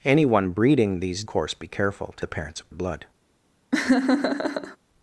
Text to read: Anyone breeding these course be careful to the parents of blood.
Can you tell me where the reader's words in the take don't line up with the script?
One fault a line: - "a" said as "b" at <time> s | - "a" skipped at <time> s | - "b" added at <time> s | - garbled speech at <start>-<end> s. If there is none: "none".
none